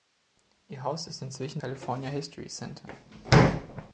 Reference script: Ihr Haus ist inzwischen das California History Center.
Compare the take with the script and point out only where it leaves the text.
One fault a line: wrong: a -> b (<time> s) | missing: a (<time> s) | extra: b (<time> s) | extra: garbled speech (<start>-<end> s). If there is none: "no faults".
missing: das (1.6 s)